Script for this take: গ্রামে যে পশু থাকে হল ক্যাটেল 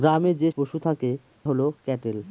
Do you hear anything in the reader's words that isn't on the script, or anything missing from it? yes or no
no